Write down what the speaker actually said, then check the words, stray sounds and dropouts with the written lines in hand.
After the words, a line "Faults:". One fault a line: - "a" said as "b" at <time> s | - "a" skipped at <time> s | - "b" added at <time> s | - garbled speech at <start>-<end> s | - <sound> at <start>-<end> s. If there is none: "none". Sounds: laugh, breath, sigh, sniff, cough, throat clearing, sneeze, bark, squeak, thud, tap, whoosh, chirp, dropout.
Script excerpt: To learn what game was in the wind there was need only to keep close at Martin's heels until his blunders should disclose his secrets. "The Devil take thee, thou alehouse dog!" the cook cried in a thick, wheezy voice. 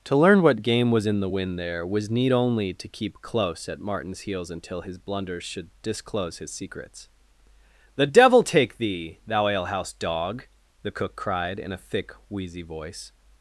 To learn what game was in the wind there was need only to keep close at Martin's heels until his blunders should disclose his secrets. "The Devil take thee, thou alehouse dog!" the cook cried in a thick, wheezy voice.
Faults:
none